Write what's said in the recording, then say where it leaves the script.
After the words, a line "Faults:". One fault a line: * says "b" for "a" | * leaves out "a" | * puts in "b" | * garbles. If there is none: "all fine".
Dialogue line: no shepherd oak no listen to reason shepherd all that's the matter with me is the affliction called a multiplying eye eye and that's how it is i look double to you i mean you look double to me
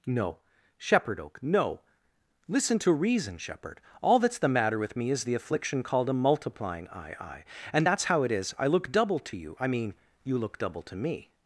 no shepherd oak no listen to reason shepherd all that's the matter with me is the affliction called a multiplying eye eye and that's how it is i look double to you i mean you look double to me
Faults:
all fine